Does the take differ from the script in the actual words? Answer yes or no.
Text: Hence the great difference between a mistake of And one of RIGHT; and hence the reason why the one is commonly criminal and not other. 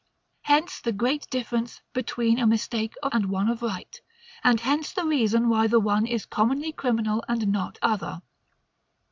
no